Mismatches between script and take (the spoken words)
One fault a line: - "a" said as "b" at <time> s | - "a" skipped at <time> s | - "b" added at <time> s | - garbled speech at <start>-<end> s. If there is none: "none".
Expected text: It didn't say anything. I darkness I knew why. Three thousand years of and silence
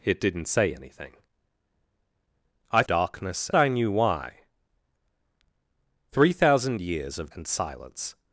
none